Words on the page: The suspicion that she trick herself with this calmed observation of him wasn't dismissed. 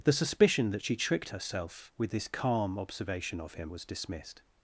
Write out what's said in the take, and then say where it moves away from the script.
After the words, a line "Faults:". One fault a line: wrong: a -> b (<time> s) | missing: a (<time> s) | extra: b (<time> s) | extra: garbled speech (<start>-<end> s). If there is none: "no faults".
The suspicion that she tricked herself with this calm observation of him was dismissed.
Faults:
wrong: trick -> tricked (0.9 s)
wrong: calmed -> calm (2.3 s)
wrong: wasn't -> was (3.7 s)